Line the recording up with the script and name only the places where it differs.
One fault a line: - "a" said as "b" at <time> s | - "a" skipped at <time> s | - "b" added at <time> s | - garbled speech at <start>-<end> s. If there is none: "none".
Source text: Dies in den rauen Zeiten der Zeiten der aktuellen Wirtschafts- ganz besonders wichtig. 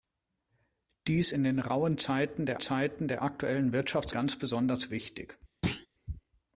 none